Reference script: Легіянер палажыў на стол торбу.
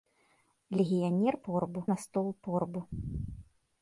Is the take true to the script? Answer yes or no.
no